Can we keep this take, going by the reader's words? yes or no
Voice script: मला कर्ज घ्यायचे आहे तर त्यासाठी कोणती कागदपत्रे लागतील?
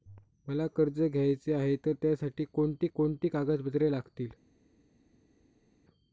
no